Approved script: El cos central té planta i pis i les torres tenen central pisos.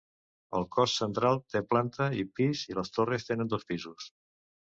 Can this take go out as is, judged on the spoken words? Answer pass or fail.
fail